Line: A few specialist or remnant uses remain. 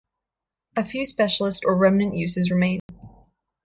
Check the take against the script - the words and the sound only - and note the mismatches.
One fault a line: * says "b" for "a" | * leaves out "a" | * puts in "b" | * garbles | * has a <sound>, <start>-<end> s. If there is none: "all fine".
* has a dropout, 2.8-2.9 s